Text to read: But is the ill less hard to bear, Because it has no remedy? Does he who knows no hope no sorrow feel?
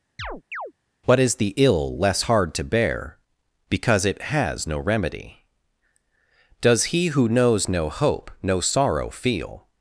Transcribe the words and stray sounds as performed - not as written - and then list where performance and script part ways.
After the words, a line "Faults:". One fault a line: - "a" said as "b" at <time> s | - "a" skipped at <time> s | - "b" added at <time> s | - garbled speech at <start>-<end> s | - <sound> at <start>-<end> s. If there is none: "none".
What is the ill less hard to bear, Because it has no remedy? Does he who knows no hope no sorrow feel?
Faults:
- chirp at 0.2-0.7 s
- "But" said as "What" at 1.0 s